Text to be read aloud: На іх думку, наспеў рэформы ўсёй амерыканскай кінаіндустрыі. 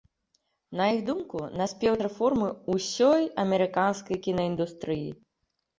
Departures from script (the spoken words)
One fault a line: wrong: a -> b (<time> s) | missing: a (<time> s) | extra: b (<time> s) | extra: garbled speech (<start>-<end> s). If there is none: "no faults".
no faults